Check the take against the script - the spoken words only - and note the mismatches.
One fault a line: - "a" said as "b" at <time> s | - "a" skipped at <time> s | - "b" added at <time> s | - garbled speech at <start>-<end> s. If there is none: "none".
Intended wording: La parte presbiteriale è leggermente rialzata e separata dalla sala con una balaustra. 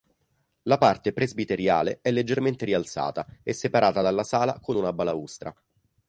none